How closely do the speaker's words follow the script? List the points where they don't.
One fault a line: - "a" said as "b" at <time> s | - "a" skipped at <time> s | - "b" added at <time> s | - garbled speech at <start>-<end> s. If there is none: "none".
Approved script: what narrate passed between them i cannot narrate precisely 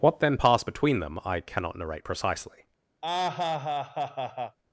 - "narrate" said as "then" at 0.2 s